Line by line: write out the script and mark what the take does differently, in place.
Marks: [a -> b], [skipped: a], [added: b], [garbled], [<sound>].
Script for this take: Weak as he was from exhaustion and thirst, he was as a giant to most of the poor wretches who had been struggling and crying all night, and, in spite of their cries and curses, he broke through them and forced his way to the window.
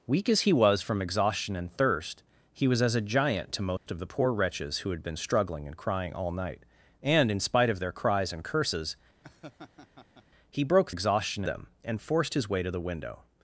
Weak as he was from exhaustion and thirst, he was as a giant to most [dropout] of the poor wretches who had been struggling and crying all night, and, in spite of their cries and curses, [laugh] he broke [through -> exhaustion] them and forced his way to the window.